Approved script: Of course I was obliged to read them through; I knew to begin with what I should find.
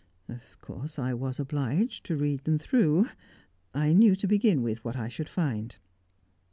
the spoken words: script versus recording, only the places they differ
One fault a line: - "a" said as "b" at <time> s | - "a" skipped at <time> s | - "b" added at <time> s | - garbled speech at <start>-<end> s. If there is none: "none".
none